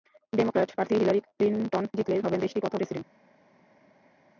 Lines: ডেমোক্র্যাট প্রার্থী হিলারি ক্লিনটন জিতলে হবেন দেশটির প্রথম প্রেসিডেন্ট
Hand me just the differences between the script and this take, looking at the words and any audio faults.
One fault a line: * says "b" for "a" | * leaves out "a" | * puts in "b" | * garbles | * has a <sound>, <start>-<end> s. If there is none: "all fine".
all fine